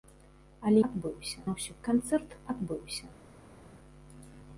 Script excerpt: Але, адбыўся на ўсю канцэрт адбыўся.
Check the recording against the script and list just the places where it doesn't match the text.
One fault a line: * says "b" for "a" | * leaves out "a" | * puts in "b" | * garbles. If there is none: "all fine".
all fine